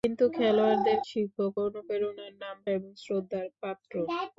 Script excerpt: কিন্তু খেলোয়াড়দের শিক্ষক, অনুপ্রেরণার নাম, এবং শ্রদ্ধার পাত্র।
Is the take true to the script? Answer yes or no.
yes